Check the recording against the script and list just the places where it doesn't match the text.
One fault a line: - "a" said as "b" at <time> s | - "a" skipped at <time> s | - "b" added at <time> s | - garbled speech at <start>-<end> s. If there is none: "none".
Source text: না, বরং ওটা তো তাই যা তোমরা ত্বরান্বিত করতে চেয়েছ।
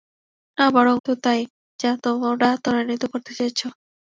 - "ওটা" skipped at 0.9 s